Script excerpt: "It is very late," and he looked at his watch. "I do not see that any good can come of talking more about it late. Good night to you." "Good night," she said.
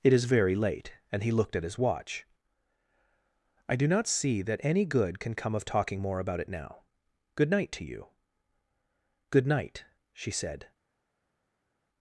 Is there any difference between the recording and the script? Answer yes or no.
yes